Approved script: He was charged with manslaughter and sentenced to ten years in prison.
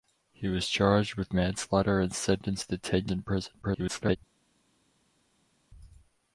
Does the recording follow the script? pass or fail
fail